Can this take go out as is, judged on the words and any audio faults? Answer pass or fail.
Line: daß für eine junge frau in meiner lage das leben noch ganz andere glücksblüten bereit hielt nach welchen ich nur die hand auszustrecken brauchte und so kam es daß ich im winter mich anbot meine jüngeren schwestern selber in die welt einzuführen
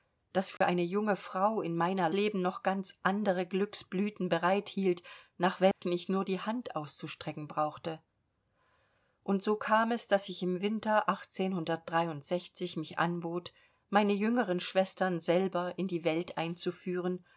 fail